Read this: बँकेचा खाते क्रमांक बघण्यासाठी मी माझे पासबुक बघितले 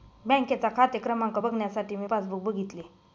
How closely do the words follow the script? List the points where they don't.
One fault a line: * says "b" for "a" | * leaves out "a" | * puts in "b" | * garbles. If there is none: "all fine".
* leaves out "माझे"